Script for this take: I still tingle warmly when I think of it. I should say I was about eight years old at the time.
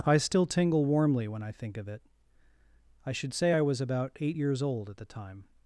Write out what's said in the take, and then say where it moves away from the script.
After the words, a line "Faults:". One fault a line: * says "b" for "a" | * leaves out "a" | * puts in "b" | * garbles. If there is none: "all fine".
I still tingle warmly when I think of it. I should say I was about eight years old at the time.
Faults:
all fine